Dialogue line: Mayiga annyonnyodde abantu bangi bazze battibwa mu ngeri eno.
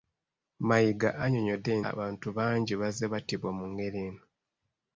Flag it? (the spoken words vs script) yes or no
no